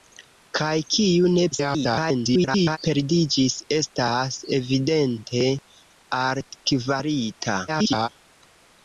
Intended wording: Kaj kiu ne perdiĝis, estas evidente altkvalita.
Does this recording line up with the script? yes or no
no